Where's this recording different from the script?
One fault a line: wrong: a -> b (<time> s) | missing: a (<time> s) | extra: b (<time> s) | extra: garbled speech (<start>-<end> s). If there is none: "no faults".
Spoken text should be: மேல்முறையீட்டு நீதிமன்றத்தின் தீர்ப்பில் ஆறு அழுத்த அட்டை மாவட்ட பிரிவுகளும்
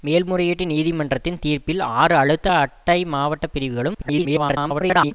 extra: garbled speech (3.9-5.1 s)